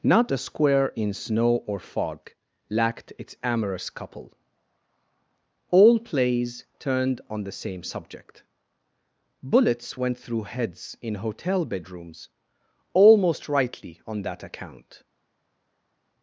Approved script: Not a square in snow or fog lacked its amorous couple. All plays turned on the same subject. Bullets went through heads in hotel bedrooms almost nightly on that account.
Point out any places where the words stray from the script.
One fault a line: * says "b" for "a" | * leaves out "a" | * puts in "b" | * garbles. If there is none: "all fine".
* says "rightly" for "nightly"